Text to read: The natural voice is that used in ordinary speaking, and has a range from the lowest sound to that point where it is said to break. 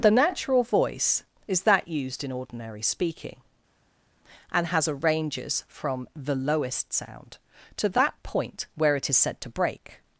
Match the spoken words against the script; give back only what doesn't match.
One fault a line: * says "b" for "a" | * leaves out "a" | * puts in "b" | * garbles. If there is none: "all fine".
* says "ranges" for "range"